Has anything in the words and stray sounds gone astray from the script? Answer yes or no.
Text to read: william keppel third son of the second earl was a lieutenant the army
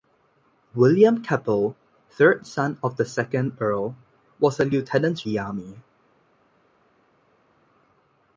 no